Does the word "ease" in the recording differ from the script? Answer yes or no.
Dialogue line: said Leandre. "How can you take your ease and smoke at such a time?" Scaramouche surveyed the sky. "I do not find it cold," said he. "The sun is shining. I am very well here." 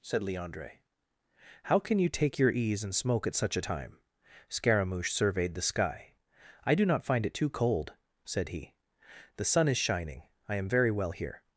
no